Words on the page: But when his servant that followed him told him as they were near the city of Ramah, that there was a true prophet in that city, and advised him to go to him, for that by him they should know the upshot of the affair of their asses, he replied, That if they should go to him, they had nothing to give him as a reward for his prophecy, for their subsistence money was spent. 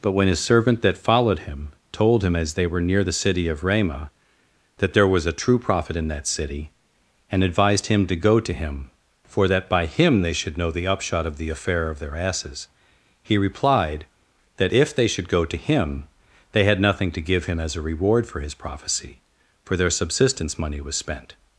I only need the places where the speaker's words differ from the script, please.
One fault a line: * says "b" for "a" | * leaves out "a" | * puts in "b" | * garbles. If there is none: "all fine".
all fine